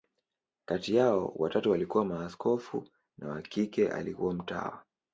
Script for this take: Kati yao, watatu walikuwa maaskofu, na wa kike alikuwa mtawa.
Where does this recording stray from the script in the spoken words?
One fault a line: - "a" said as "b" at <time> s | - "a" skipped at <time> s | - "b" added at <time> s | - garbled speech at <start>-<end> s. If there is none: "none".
none